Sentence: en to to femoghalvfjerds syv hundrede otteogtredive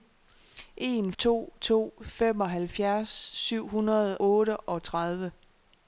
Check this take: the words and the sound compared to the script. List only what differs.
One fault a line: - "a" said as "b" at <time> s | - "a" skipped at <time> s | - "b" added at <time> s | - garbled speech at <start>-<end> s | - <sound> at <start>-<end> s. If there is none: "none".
none